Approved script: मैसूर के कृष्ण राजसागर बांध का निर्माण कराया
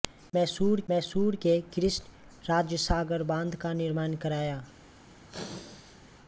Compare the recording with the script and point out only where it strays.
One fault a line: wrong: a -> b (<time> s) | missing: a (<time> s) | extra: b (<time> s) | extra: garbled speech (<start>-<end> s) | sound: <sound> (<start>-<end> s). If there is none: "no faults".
extra: मैसूर (0.9 s)
sound: sneeze (5.3-6.0 s)